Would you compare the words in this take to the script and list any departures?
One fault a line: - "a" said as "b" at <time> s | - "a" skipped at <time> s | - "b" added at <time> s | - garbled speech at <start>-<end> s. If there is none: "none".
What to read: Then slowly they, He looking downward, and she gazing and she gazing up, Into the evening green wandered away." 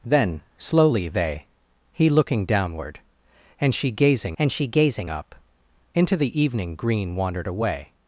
none